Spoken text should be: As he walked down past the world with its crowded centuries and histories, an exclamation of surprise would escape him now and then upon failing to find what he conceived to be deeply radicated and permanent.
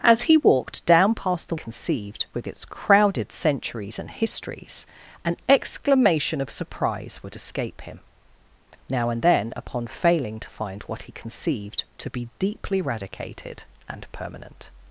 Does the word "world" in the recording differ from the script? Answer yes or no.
yes